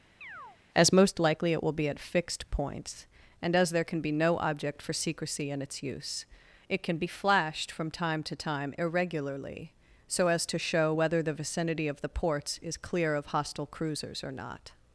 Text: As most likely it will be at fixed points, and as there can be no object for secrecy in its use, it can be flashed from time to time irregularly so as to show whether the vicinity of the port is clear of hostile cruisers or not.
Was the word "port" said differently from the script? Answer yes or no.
yes